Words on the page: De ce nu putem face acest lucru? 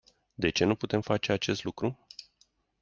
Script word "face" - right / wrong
right